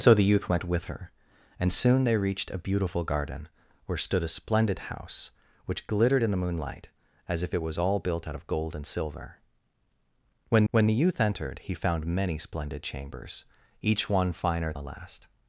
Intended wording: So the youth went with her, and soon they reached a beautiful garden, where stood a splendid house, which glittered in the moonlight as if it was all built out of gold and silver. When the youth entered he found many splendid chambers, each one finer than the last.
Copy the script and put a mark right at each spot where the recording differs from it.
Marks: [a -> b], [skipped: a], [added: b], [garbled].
So the youth went with her, and soon they reached a beautiful garden, where stood a splendid house, which glittered in the moonlight as if it was all built out of gold and silver. When [added: when] the youth entered he found many splendid chambers, each one finer [skipped: than] the last.